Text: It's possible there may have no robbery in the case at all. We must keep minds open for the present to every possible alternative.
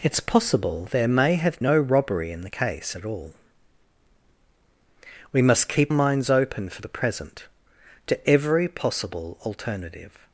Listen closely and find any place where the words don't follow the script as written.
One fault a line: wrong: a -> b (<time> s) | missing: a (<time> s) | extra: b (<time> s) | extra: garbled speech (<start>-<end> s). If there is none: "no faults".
no faults